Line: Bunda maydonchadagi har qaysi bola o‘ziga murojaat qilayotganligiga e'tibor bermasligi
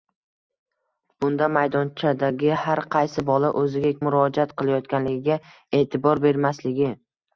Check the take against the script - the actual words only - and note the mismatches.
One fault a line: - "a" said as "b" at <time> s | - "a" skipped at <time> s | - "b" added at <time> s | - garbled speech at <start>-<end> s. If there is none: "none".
none